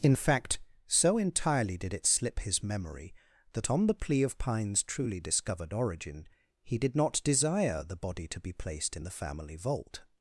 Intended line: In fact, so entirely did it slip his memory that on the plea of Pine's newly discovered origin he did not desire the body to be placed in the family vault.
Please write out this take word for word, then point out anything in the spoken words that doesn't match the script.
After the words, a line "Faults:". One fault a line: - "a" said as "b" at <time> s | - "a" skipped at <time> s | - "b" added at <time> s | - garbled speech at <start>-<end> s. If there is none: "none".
In fact, so entirely did it slip his memory that on the plea of Pine's truly discovered origin he did not desire the body to be placed in the family vault.
Faults:
- "newly" said as "truly" at 4.8 s